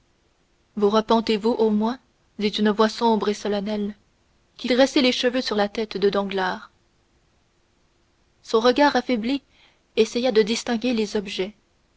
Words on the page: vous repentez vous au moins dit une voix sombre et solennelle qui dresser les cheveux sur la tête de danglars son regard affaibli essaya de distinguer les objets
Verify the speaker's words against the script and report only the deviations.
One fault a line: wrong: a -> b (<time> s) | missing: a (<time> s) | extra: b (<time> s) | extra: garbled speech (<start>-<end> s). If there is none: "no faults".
no faults